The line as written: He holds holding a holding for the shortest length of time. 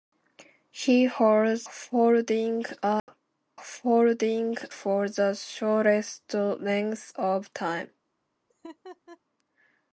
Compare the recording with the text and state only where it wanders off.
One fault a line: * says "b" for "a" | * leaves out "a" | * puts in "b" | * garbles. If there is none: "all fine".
all fine